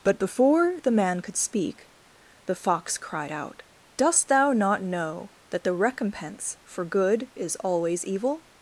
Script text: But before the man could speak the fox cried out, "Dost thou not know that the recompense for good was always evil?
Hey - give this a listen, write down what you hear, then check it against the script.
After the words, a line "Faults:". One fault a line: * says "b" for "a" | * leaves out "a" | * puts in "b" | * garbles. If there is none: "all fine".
But before the man could speak the fox cried out, "Dost thou not know that the recompense for good is always evil?
Faults:
* says "is" for "was"